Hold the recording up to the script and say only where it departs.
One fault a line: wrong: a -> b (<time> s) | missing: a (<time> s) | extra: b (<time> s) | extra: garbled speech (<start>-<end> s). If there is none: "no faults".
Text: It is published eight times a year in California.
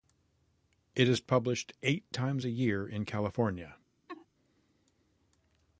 no faults